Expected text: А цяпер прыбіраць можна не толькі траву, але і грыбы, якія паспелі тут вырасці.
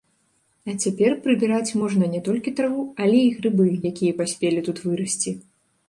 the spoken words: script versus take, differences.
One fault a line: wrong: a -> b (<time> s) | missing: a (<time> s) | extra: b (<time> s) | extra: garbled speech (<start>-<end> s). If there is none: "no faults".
no faults